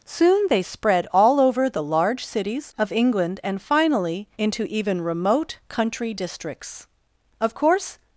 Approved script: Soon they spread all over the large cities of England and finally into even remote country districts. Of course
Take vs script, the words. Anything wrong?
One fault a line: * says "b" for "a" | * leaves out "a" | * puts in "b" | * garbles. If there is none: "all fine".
all fine